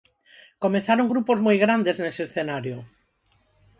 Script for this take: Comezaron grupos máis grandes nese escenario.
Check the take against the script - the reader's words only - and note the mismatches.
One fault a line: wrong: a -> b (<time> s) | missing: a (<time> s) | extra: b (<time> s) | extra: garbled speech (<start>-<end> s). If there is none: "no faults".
wrong: máis -> moi (1.5 s)